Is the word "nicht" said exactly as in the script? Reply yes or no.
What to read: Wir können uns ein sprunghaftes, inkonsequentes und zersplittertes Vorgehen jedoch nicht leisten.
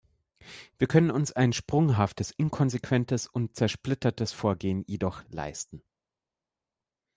no